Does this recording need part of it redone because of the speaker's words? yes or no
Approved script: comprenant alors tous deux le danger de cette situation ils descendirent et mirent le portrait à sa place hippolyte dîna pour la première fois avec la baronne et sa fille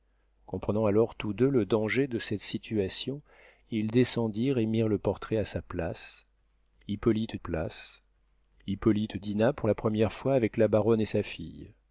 yes